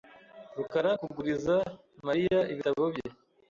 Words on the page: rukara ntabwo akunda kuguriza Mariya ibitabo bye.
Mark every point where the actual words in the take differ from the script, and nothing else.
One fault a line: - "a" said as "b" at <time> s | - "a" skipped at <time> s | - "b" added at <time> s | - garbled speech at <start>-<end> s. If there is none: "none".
- "ntabwo akunda" skipped at 0.9 s